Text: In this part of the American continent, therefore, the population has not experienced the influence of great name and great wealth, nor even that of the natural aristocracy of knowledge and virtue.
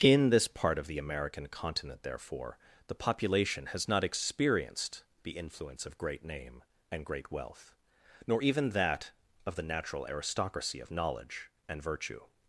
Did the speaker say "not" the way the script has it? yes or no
yes